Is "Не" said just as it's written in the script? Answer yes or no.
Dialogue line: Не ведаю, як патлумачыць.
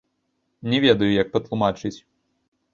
yes